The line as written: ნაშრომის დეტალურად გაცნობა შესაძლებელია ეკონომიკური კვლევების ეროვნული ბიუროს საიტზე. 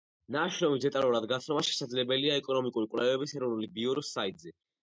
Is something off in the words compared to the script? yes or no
no